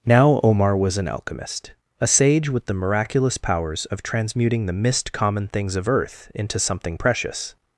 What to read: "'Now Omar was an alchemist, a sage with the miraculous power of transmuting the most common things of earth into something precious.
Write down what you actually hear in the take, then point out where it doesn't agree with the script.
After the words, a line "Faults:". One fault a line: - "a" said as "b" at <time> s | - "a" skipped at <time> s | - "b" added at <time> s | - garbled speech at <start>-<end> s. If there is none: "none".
"'Now Omar was an alchemist, a sage with the miraculous powers of transmuting the mist common things of earth into something precious.
Faults:
- "power" said as "powers" at 3.4 s
- "most" said as "mist" at 4.7 s